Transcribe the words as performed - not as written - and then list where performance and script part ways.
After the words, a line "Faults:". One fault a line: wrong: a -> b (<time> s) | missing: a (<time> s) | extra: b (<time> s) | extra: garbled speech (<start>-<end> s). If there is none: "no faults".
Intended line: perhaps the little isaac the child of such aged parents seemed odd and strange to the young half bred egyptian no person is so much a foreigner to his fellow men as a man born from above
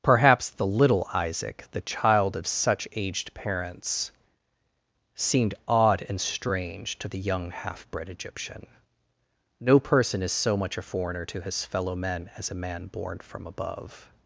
perhaps the little isaac the child of such aged parents seemed odd and strange to the young half bred egyptian no person is so much a foreigner to his fellow men as a man born from above
Faults:
no faults